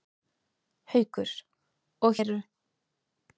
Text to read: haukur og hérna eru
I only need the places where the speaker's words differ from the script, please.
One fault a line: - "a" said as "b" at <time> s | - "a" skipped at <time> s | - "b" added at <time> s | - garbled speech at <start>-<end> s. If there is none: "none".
- "hérna" skipped at 2.2 s